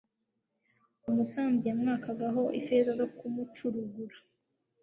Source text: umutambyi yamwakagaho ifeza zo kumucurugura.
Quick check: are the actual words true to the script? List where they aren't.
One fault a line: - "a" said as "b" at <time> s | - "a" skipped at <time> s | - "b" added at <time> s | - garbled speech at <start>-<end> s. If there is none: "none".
none